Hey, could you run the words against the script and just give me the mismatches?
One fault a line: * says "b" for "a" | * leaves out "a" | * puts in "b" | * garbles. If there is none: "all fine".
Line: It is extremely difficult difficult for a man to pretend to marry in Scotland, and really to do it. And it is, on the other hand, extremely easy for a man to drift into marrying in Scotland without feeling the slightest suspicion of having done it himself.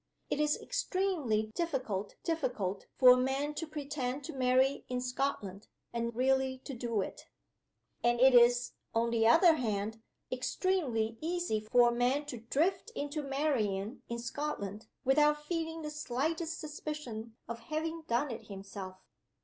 all fine